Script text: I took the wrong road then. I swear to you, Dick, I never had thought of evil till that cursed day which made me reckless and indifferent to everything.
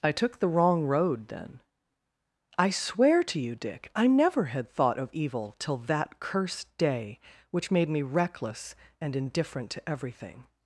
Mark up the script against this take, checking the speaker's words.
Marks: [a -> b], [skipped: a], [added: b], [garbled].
I took the wrong road then. I swear to you, Dick, I never had thought of evil till that cursed day which made me reckless and indifferent to everything.